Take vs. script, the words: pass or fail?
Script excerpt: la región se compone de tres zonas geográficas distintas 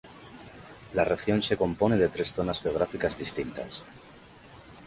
pass